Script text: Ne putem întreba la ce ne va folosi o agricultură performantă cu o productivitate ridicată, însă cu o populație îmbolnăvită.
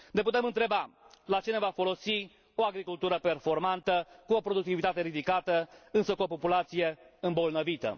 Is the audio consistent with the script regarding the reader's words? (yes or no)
yes